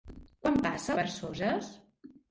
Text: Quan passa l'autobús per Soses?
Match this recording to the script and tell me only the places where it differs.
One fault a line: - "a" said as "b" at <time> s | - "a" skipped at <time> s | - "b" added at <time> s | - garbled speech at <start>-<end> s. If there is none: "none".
- "l'autobús" skipped at 1.0 s